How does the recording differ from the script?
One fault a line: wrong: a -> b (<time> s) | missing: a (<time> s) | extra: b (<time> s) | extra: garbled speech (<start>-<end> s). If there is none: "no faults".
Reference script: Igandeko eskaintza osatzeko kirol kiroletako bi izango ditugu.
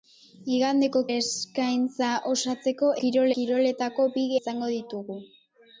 no faults